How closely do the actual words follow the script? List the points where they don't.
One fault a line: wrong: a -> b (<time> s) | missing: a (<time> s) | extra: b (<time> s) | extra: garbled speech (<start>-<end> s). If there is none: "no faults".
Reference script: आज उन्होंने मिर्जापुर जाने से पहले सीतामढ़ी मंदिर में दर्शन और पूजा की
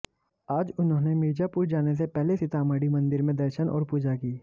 no faults